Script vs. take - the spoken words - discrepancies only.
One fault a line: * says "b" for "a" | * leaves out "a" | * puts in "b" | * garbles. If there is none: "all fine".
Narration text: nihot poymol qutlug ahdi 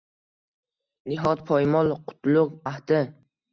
all fine